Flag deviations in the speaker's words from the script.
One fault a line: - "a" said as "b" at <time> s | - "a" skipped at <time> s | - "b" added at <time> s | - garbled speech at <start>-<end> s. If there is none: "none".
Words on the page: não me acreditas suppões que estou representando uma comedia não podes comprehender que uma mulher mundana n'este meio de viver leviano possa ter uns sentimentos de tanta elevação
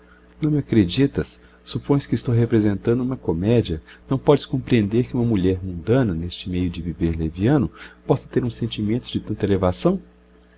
none